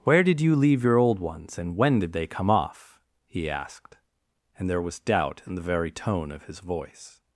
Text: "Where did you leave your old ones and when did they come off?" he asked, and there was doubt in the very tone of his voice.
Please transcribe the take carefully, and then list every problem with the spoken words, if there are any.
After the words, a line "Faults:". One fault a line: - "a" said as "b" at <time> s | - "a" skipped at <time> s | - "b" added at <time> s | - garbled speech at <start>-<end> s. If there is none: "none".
"Where did you leave your old ones and when did they come off?" he asked, and there was doubt in the very tone of his voice.
Faults:
none